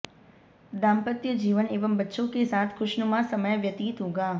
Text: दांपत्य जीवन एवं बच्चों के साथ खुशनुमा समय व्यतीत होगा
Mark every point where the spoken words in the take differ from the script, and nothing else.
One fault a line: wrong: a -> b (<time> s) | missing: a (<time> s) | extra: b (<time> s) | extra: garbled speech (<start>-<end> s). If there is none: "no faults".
no faults